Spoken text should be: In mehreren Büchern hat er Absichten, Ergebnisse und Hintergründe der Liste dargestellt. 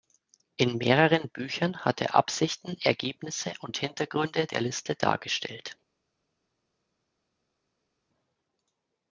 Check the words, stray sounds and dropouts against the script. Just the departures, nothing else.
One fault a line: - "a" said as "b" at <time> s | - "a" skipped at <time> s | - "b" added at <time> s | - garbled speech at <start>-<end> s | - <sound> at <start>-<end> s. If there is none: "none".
none